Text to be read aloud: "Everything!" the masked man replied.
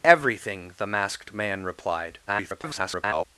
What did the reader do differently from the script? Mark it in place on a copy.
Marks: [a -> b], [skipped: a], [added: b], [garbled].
"Everything!" the masked man replied. [garbled]